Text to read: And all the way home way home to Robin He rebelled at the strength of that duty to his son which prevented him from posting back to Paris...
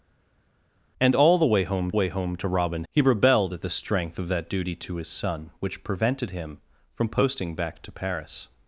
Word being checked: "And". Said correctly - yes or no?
yes